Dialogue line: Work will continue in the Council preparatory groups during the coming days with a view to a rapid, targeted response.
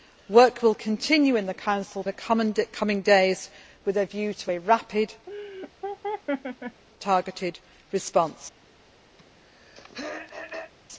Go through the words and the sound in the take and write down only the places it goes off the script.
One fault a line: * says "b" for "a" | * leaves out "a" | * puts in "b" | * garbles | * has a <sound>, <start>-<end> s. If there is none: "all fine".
* leaves out "preparatory groups during"
* has a laugh, 5.3-6.8 s
* has a throat clearing, 9.2-10.7 s